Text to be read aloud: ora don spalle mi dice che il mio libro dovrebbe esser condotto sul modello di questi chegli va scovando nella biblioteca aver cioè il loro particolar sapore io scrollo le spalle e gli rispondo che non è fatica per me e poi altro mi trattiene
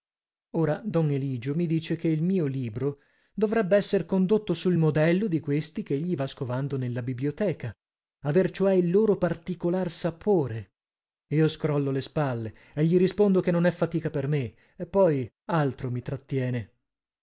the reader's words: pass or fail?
fail